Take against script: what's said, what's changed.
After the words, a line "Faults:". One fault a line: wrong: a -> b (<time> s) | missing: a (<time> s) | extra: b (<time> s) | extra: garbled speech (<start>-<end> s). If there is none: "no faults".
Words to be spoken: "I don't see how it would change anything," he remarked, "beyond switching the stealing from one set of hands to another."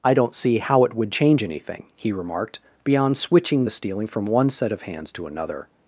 "I don't see how it would change anything," he remarked, "beyond switching the stealing from one set of hands to another."
Faults:
no faults